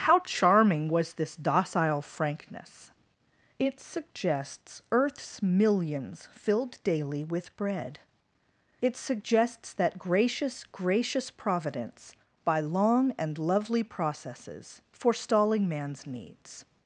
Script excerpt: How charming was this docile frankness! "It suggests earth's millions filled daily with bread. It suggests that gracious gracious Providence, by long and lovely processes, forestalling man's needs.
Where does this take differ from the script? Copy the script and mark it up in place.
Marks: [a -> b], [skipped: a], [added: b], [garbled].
How charming was this docile frankness! "It suggests earth's millions filled daily with bread. It suggests that gracious gracious Providence, by long and lovely processes, forestalling man's needs.